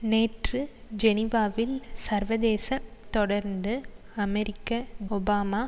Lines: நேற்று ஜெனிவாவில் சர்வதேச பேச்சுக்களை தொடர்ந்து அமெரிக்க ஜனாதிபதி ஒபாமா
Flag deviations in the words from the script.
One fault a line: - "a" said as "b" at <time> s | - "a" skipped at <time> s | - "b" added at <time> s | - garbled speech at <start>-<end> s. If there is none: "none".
- "பேச்சுக்களை" skipped at 2.7 s
- "ஜனாதிபதி" skipped at 4.7 s